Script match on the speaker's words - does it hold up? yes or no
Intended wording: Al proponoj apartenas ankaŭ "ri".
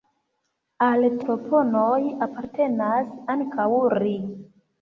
yes